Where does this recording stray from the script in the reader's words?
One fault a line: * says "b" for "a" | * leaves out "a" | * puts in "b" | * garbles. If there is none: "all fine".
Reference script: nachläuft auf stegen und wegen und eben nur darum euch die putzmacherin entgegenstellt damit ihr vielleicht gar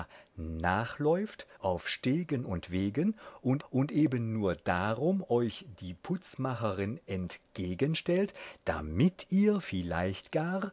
* puts in "und"